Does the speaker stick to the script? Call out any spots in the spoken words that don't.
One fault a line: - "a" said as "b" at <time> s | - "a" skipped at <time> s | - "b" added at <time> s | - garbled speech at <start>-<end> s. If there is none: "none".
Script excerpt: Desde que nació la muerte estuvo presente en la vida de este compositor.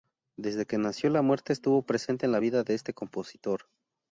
none